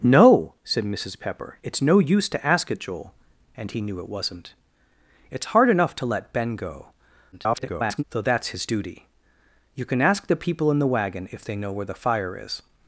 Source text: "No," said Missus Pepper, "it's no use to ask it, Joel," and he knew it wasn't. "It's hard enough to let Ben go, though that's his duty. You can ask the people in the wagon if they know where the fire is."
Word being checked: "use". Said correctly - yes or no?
yes